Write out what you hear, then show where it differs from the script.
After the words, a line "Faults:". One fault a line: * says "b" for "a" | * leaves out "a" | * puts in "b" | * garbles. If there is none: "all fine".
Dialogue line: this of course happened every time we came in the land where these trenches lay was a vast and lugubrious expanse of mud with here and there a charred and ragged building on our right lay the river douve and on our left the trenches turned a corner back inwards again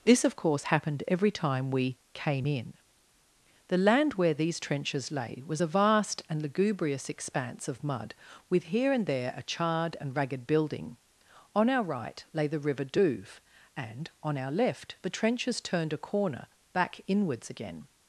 this of course happened every time we came in the land where these trenches lay was a vast and lugubrious expanse of mud with here and there a charred and ragged building on our right lay the river douve and on our left the trenches turned a corner back inwards again
Faults:
all fine